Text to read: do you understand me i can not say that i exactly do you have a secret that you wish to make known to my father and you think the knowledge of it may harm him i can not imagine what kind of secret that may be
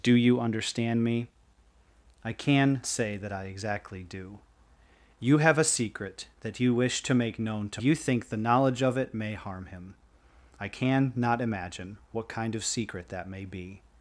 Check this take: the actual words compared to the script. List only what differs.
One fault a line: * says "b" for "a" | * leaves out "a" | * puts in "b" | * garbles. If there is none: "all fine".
* leaves out "not"
* leaves out "my father and"